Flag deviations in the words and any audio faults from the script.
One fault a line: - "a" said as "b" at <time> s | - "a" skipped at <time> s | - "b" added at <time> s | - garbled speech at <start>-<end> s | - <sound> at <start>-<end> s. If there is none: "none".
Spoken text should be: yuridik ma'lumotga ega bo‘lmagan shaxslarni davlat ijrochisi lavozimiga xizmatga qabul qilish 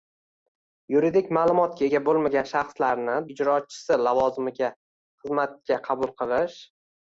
- "davlat" skipped at 3.2 s